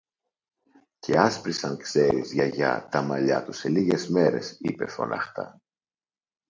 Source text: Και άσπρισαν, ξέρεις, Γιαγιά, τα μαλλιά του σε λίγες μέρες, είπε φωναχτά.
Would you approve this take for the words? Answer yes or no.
yes